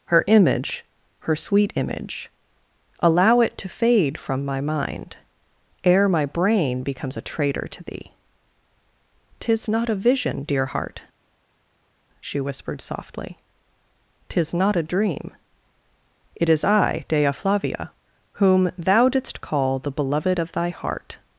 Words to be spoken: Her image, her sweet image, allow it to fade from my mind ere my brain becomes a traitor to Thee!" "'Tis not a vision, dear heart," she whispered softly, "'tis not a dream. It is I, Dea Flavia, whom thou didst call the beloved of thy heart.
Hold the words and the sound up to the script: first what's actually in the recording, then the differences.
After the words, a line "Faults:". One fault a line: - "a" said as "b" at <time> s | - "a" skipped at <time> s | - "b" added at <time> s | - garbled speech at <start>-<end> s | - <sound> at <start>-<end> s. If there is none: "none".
Her image, her sweet image, allow it to fade from my mind ere my brain becomes a traitor to Thee!" "'Tis not a vision, dear heart," she whispered softly, "'tis not a dream. It is I, Dea Flavia, whom thou didst call the beloved of thy heart.
Faults:
none